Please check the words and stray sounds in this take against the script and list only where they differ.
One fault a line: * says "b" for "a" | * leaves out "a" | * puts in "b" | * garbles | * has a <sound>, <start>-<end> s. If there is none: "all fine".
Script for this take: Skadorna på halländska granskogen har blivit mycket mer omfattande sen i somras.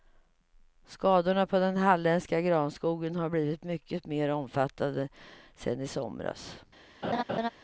* puts in "den"
* has a laugh, 7.0-7.5 s